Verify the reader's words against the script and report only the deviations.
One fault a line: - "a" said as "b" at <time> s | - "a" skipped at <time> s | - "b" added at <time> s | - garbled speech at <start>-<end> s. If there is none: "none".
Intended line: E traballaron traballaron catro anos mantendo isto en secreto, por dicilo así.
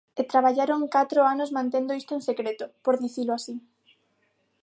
- "traballaron" skipped at 0.8 s